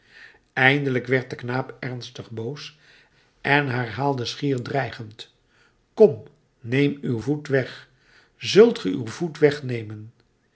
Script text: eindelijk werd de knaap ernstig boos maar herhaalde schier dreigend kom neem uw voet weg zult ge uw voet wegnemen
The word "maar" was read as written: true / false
false